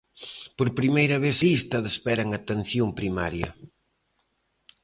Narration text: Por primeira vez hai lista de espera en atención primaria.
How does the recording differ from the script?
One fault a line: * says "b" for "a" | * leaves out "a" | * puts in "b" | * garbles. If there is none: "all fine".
* leaves out "hai"